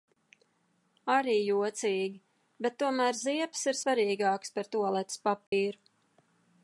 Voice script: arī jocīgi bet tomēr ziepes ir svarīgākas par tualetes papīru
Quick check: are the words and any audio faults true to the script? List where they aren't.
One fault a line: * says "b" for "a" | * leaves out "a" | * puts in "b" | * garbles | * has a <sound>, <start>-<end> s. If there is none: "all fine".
* has a dropout, 5.5-5.5 s